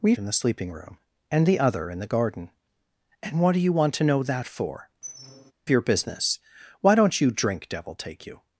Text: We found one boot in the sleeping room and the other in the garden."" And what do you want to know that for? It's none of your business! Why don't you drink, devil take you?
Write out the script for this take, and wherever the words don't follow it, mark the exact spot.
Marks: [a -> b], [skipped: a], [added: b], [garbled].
We [skipped: found one boot] in the sleeping room and the other in the garden."" And what do you want to know that for? [skipped: It's none of] your business! Why don't you drink, devil take you?